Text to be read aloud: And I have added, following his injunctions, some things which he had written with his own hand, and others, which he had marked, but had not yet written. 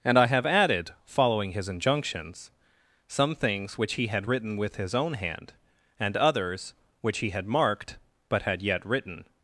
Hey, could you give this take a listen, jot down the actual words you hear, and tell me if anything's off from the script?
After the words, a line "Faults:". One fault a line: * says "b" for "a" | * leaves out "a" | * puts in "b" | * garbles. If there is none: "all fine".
And I have added, following his injunctions, some things which he had written with his own hand, and others, which he had marked, but had yet written.
Faults:
* leaves out "not"